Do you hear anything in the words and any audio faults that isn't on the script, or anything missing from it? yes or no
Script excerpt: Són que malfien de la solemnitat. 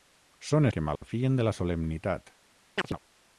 yes